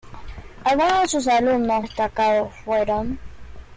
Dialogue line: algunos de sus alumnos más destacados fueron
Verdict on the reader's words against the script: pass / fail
fail